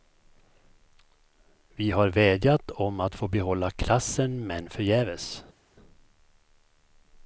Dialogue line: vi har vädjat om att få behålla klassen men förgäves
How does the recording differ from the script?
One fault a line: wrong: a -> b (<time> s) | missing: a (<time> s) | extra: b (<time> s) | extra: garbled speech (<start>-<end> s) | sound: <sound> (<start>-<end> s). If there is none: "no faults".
no faults